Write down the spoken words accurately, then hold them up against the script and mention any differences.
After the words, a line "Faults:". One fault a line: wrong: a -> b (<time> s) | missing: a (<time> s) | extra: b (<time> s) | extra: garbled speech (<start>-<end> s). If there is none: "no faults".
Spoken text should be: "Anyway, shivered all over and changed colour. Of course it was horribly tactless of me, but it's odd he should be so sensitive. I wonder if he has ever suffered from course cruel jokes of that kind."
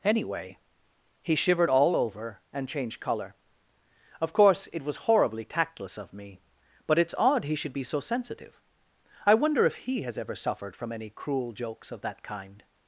"Anyway, he shivered all over and changed colour. Of course it was horribly tactless of me, but it's odd he should be so sensitive. I wonder if he has ever suffered from any cruel jokes of that kind."
Faults:
extra: he (1.2 s)
wrong: course -> any (10.9 s)